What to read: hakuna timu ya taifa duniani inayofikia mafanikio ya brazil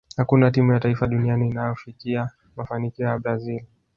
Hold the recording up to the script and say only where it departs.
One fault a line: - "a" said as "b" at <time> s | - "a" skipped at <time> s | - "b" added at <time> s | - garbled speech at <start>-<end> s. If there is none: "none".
none